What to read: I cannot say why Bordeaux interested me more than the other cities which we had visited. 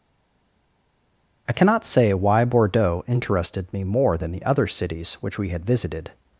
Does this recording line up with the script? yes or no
yes